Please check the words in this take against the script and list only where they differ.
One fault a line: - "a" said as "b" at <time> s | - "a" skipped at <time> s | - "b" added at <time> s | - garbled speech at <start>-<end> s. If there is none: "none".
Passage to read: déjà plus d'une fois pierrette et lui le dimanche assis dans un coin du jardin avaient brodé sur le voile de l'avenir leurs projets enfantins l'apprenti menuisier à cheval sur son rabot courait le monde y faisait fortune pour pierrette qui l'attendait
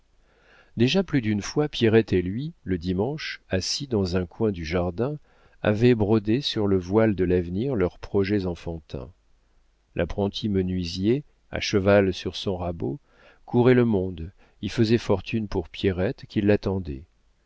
none